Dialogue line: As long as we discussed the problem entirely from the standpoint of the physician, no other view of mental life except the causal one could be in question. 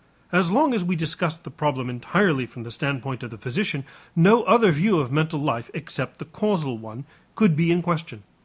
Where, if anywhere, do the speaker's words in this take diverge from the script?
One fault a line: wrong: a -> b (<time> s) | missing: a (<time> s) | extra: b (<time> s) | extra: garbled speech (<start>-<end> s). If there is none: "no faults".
no faults